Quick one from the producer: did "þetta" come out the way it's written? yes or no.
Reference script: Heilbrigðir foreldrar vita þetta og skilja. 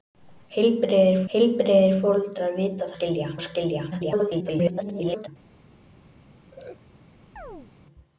no